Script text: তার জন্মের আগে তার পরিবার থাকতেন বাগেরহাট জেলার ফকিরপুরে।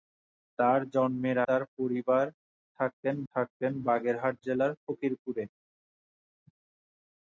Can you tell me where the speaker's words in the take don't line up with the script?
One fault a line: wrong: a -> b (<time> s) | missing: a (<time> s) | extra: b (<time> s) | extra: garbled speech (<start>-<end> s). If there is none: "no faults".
missing: আগে (1.4 s)
extra: থাকতেন (3.3 s)